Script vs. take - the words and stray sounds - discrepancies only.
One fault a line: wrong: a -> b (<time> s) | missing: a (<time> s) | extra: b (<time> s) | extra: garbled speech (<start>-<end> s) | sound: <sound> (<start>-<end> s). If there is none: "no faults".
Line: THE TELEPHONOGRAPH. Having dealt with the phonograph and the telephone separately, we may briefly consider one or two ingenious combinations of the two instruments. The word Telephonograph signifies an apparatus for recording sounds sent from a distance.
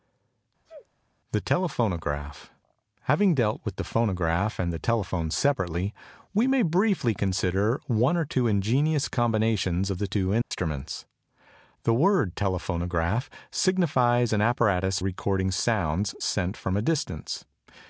sound: sneeze (0.7-0.9 s)
sound: dropout (10.4-10.5 s)
missing: for (15.0 s)